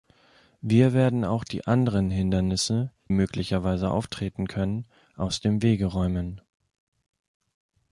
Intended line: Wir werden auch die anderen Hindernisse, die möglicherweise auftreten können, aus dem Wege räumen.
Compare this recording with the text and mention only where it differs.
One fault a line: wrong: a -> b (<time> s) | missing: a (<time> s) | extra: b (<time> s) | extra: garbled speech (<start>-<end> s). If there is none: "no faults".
missing: die (2.9 s)